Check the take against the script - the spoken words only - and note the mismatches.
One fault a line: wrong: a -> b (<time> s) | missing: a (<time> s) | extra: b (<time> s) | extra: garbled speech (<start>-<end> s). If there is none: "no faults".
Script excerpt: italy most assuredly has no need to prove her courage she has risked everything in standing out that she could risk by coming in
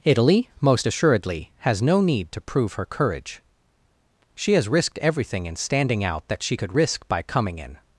no faults